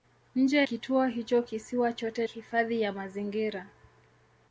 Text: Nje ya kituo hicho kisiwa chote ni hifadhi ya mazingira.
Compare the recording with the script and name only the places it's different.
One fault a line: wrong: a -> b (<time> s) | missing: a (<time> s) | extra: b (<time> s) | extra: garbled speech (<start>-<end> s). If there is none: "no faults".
missing: ya (0.6 s)
missing: ni (2.3 s)